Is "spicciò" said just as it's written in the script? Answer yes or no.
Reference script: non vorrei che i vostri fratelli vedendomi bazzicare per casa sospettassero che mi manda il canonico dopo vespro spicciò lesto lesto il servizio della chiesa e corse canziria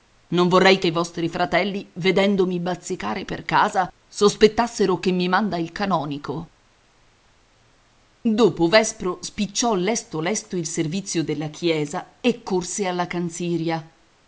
yes